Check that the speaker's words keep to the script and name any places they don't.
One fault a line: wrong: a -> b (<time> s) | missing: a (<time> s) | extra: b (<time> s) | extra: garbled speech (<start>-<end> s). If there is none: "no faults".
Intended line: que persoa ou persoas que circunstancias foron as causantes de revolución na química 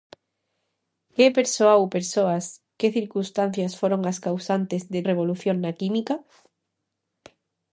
no faults